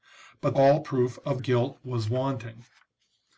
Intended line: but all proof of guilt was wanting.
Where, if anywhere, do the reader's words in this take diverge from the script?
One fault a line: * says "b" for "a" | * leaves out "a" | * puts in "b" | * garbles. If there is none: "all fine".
all fine